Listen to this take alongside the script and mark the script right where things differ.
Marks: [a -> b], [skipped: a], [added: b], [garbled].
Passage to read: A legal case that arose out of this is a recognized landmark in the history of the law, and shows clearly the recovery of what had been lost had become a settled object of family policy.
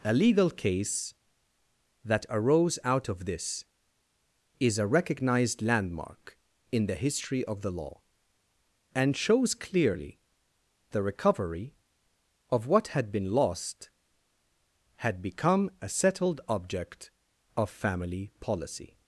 A legal case that arose out of this is a recognized landmark in the history of the law, and shows clearly the recovery of what had been lost had become a settled object of family policy.